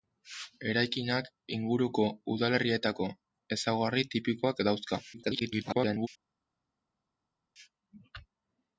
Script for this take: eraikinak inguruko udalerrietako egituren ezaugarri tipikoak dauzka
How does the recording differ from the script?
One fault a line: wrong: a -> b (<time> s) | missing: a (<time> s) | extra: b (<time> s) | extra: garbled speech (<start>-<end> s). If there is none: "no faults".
missing: egituren (3.1 s)
extra: garbled speech (5.1-6.1 s)